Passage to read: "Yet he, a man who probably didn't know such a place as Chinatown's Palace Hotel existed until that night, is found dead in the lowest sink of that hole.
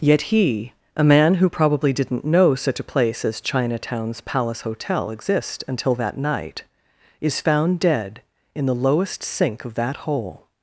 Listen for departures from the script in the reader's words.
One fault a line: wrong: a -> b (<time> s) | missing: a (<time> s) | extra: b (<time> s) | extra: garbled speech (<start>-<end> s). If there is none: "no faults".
wrong: existed -> exist (5.1 s)